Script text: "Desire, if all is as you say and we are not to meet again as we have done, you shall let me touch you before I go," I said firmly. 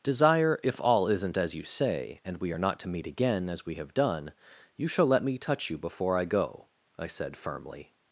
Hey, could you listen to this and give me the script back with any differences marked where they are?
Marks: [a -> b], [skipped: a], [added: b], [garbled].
"Desire, if all [is -> isn't] as you say and we are not to meet again as we have done, you shall let me touch you before I go," I said firmly.